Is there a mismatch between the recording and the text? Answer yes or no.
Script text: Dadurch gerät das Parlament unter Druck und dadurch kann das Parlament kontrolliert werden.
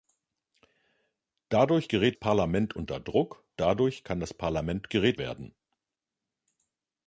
yes